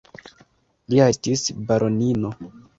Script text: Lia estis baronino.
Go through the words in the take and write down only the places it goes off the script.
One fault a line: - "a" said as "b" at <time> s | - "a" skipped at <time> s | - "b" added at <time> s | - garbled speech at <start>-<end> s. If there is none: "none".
none